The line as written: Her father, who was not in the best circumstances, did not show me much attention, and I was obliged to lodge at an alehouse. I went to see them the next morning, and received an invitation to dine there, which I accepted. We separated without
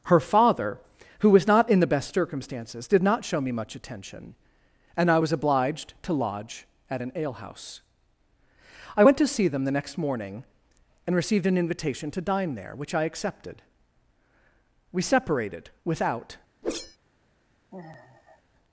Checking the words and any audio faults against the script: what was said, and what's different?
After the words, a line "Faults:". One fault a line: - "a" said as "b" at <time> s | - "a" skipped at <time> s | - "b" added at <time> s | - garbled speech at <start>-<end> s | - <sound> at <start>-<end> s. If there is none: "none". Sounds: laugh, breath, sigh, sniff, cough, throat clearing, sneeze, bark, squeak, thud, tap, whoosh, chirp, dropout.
Her father, who was not in the best circumstances, did not show me much attention, and I was obliged to lodge at an alehouse. I went to see them the next morning, and received an invitation to dine there, which I accepted. We separated without
Faults:
- whoosh at 16.6-17.0 s
- sigh at 17.7-18.4 s